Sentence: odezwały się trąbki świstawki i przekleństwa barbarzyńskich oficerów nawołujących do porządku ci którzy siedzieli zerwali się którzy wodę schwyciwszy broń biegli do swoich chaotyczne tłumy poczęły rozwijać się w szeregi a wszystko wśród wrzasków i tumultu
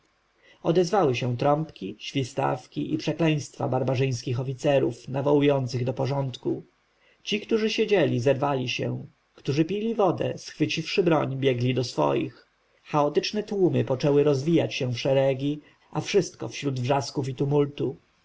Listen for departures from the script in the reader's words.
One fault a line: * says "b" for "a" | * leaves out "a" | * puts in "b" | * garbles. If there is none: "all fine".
* puts in "pili"